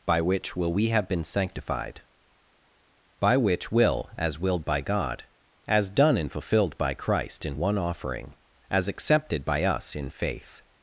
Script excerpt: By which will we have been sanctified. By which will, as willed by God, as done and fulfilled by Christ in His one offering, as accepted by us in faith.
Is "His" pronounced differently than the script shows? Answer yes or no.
yes